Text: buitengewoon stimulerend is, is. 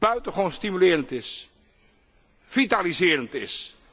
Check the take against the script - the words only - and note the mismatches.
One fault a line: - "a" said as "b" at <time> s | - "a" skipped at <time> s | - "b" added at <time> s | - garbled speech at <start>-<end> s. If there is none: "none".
- "vitaliserend" added at 2.4 s